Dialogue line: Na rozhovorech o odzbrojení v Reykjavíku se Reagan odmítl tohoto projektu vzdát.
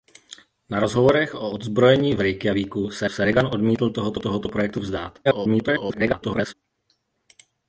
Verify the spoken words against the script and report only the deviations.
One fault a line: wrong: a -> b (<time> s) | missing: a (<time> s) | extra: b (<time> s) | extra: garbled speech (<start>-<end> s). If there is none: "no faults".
extra: se (3.1 s)
extra: tohoto (4.2 s)
extra: garbled speech (5.2-6.5 s)